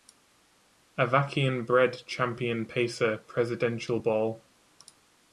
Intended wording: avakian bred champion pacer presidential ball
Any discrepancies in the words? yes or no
no